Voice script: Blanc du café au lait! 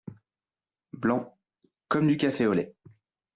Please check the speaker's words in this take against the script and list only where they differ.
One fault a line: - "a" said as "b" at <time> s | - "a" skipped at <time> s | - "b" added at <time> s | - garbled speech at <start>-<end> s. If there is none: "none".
- "comme" added at 1.9 s